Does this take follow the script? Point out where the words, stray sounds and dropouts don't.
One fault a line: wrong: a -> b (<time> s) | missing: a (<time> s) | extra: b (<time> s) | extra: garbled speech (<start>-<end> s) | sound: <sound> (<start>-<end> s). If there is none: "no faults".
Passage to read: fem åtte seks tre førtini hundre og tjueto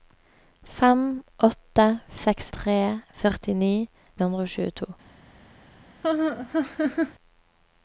sound: laugh (6.0-7.1 s)